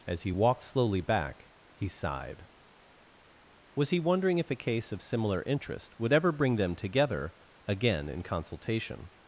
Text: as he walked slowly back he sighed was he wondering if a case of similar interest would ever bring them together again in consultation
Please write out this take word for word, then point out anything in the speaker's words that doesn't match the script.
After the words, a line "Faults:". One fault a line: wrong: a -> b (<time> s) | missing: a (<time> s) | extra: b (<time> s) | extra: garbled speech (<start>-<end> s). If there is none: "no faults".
as he walked slowly back he sighed was he wondering if a case of similar interest would ever bring them together again in consultation
Faults:
no faults